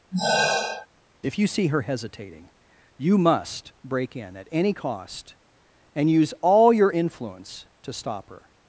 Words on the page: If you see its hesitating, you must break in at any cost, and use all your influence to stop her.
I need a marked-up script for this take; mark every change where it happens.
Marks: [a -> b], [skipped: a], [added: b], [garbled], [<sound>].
[sigh] If you see [its -> her] hesitating, you must break in at any cost, and use all your influence to stop her.